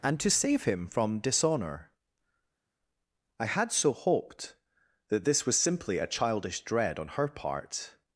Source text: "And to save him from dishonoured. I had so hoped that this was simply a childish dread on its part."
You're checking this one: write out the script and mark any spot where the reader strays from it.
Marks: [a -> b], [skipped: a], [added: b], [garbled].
"And to save him from [dishonoured. -> dishonour] I had so hoped that this was simply a childish dread on [its -> her] part."